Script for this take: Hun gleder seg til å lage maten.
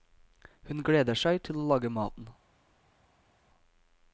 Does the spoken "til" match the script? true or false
true